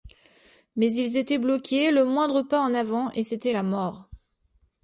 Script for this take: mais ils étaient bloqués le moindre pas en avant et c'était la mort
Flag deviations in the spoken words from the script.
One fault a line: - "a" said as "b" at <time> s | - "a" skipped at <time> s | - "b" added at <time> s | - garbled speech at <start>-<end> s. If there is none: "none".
none